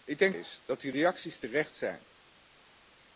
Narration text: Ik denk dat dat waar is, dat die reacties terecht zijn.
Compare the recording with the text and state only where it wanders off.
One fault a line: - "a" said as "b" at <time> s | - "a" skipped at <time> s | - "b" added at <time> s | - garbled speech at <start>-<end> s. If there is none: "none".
- "dat dat waar" skipped at 0.3 s